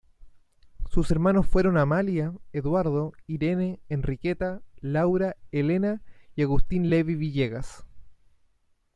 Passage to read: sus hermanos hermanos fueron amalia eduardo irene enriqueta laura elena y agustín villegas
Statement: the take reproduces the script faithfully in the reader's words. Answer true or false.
false